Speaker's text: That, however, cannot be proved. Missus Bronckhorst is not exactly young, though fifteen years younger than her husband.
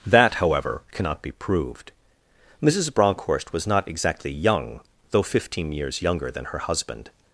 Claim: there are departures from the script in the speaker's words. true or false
true